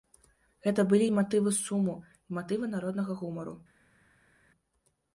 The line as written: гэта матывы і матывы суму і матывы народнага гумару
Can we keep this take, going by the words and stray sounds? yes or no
no